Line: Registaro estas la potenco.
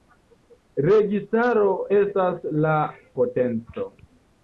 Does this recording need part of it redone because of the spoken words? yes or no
no